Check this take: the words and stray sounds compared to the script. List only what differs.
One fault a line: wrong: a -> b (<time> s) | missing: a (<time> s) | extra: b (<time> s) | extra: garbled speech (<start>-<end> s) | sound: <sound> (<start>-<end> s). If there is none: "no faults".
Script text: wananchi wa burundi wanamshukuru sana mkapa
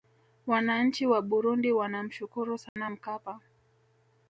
sound: dropout (2.7-2.8 s)